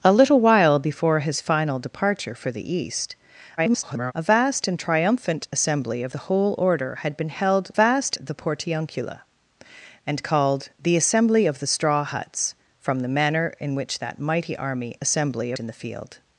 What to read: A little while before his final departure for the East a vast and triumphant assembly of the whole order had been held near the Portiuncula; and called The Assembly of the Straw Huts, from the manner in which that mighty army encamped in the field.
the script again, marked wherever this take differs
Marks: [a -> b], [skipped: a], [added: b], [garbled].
A little while before his final departure for the East [garbled] a vast and triumphant assembly of the whole order had been held [near -> vast] the Portiuncula; and called The Assembly of the Straw Huts, from the manner in which that mighty army [encamped -> assembly] in the field.